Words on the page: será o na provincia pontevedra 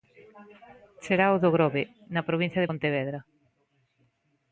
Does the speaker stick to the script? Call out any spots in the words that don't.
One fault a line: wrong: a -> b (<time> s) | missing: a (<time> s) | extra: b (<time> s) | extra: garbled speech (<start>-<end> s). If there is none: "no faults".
extra: do grove (1.4 s)
extra: de (2.6 s)